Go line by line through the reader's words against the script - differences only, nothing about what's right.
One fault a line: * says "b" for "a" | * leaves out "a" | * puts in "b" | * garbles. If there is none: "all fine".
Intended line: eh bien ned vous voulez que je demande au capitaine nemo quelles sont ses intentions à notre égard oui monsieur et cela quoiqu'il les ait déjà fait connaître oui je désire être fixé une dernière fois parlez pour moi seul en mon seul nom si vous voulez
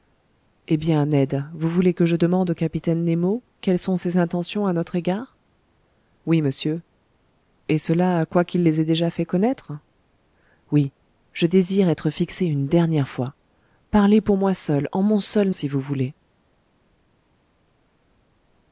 * leaves out "nom"